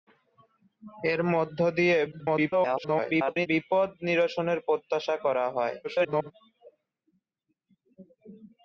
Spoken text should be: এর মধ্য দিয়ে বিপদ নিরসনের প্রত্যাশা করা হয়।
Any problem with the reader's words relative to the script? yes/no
yes